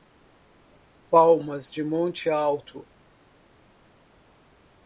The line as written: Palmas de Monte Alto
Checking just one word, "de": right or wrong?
right